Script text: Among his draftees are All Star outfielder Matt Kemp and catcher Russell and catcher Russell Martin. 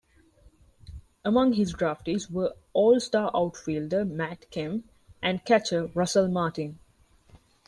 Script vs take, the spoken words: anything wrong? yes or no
yes